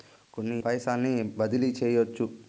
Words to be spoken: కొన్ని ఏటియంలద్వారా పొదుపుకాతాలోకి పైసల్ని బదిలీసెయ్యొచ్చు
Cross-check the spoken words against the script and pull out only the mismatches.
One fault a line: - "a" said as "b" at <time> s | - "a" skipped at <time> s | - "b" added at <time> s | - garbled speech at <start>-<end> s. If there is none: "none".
- "ఏటియంలద్వారా పొదుపుకాతాలోకి" skipped at 0.6 s